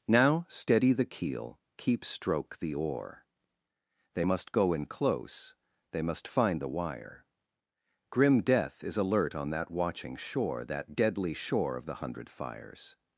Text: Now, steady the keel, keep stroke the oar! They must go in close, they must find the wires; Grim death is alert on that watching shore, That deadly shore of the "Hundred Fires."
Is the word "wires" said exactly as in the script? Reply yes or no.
no